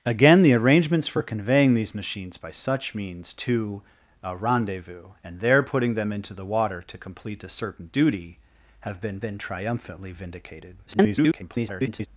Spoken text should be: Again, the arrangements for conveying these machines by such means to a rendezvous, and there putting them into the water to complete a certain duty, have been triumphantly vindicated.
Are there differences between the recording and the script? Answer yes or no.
yes